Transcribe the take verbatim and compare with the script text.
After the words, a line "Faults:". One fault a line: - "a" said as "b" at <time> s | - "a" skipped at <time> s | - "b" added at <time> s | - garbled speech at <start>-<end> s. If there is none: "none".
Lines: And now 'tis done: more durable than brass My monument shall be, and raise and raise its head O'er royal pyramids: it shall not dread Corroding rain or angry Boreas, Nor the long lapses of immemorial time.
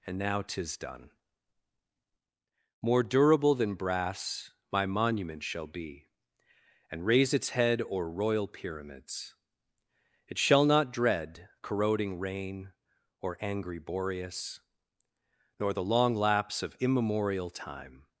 And now 'tis done: more durable than brass My monument shall be, and raise its head O'er royal pyramids: it shall not dread Corroding rain or angry Boreas, Nor the long lapse of immemorial time.
Faults:
- "and raise" skipped at 7.3 s
- "lapses" said as "lapse" at 16.1 s